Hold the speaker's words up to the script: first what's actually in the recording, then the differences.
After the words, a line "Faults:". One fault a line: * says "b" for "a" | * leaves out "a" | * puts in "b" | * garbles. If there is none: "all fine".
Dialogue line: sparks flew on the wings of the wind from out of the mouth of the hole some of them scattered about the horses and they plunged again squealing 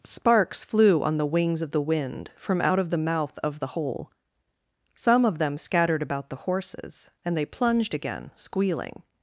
sparks flew on the wings of the wind from out of the mouth of the hole some of them scattered about the horses and they plunged again squealing
Faults:
all fine